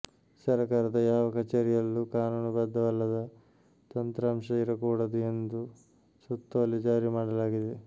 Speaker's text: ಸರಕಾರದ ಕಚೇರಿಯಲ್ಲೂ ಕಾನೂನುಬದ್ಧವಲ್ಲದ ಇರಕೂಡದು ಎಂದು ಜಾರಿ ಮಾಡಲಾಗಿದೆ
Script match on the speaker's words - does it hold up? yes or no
no